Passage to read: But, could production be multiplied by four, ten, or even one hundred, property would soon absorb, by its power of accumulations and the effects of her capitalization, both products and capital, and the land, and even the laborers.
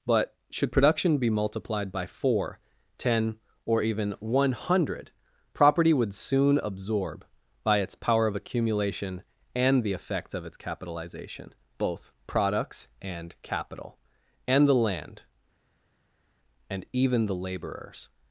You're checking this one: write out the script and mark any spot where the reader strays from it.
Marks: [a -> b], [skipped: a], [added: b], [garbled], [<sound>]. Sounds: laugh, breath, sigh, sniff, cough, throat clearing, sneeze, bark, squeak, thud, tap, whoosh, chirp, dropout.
But, [could -> should] production be multiplied by four, ten, or even one hundred, property would soon absorb, by its power of [accumulations -> accumulation] and the effects of [her -> its] capitalization, both products and capital, and the land, and even the laborers.